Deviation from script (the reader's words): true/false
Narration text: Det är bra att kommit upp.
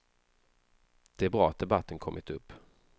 true